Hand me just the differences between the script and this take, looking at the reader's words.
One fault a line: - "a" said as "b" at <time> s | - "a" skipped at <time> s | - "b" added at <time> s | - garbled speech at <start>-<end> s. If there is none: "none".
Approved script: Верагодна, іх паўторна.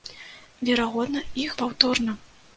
none